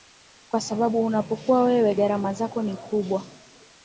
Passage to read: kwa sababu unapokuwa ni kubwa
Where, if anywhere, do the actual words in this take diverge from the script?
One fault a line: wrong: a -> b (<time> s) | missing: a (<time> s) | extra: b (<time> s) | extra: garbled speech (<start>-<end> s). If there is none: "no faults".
extra: wewe gharama zako (1.6 s)